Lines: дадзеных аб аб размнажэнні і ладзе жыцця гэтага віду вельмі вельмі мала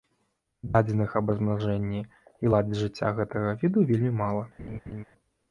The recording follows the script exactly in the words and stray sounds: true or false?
false